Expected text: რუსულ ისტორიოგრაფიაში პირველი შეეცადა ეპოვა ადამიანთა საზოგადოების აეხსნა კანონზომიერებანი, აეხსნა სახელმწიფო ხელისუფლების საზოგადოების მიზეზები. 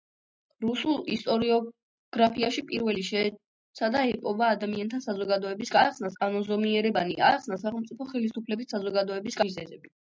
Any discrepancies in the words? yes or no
no